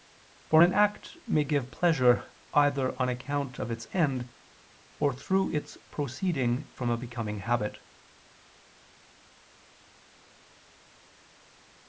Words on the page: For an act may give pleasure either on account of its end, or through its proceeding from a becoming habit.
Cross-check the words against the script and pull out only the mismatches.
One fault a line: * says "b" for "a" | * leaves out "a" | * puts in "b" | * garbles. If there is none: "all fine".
all fine